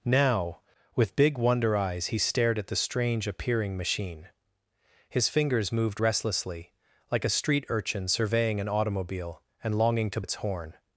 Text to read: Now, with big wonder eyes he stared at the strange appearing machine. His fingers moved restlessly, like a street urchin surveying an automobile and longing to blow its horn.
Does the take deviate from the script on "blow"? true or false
true